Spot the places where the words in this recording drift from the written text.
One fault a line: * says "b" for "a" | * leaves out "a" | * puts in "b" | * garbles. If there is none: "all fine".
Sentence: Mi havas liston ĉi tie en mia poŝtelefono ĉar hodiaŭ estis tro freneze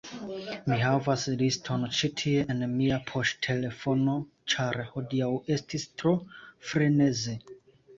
all fine